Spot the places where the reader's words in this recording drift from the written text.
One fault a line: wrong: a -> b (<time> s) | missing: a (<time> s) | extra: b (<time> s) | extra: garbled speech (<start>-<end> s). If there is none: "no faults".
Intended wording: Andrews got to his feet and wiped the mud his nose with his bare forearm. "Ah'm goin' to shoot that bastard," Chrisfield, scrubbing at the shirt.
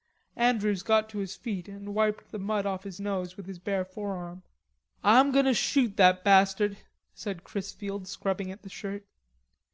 extra: off (2.6 s)
extra: said (7.1 s)